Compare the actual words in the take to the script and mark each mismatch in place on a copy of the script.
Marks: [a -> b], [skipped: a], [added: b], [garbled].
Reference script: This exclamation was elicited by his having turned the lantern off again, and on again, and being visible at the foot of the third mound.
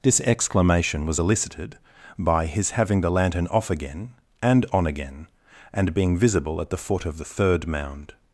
This exclamation was elicited by his having [skipped: turned] the lantern off again, and on again, and being visible at the foot of the third mound.